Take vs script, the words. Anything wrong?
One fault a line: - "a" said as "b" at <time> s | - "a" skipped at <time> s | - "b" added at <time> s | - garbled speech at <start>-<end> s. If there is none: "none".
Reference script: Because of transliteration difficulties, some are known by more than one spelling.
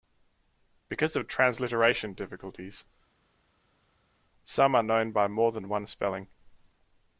none